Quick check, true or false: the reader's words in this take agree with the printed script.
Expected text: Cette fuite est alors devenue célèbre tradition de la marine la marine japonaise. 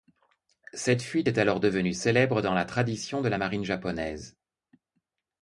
false